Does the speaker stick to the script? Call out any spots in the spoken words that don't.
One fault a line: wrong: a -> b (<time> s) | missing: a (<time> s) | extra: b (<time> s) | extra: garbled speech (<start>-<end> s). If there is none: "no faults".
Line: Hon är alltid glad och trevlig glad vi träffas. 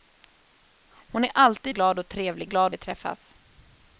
no faults